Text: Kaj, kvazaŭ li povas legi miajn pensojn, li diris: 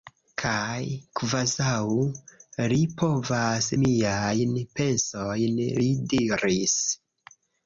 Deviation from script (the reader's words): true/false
true